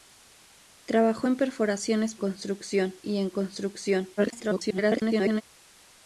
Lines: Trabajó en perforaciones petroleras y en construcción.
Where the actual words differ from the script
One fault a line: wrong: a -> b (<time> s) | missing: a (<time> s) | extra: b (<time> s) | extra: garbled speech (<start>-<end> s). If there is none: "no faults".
wrong: petroleras -> construcción (2.2 s)
extra: garbled speech (4.2-5.4 s)